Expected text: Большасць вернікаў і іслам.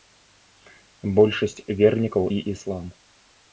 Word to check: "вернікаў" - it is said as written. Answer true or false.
true